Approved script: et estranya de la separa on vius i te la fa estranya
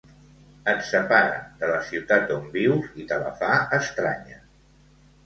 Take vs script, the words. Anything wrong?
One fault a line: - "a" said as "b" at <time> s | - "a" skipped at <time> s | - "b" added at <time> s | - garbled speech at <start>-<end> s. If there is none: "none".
- "estranya" said as "separa" at 0.8 s
- "separa" said as "ciutat" at 1.9 s